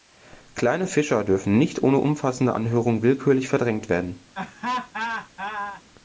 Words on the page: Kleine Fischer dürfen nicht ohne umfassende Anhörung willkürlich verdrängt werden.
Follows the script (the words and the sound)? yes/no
no